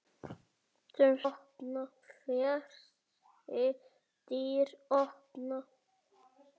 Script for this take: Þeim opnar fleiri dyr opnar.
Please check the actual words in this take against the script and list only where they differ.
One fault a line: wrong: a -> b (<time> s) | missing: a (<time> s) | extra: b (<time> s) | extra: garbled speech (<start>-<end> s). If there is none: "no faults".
no faults